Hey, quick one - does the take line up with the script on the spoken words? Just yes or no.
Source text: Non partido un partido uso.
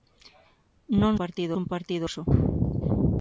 yes